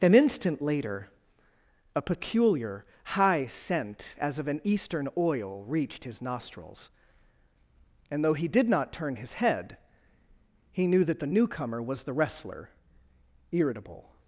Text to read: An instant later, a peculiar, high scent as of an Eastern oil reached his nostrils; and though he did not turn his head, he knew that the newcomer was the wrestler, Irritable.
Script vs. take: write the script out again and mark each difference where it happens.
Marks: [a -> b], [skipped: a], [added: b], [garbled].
An instant later, a peculiar, high scent as of an Eastern oil reached his nostrils; and though he did not turn his head, he knew that the newcomer was the wrestler, Irritable.